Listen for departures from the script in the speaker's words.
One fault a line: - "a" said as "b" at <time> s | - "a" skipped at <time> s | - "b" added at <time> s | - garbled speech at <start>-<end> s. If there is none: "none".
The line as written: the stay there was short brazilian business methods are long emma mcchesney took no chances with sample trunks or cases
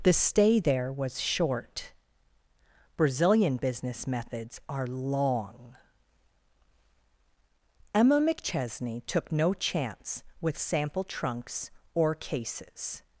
- "chances" said as "chance" at 9.5 s